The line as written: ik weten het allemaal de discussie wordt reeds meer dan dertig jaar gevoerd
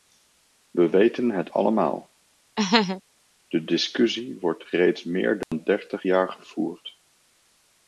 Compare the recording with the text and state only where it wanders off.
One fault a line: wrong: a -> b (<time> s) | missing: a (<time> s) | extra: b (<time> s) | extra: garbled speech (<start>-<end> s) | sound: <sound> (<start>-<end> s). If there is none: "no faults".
wrong: ik -> we (0.7 s)
sound: laugh (2.6-3.0 s)
sound: dropout (5.4-5.5 s)